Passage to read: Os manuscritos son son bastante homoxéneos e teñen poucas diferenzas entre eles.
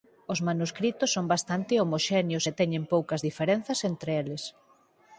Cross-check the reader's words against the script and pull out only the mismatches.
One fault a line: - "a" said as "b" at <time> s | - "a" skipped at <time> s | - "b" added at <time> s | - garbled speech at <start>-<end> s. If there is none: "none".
- "son" skipped at 1.2 s